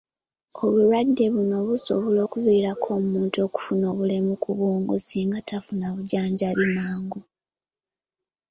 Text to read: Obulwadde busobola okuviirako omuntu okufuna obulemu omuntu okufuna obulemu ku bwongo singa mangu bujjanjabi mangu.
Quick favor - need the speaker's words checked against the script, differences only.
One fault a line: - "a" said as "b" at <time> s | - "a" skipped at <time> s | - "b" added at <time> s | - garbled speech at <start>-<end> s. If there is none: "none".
- "buno" added at 1.3 s
- "omuntu okufuna obulemu" skipped at 4.3 s
- "mangu" said as "tafuna" at 5.5 s